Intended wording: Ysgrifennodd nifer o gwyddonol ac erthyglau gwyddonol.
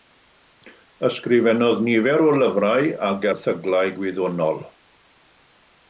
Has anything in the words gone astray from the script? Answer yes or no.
yes